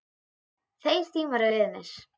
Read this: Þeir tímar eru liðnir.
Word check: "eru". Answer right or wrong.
wrong